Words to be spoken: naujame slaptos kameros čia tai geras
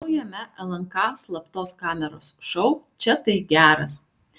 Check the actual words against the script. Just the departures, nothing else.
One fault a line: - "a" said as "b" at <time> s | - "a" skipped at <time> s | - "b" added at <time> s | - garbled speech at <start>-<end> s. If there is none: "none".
- "lnk" added at 0.7 s
- "šou" added at 2.5 s